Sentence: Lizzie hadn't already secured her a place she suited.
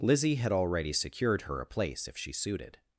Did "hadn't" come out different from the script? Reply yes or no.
yes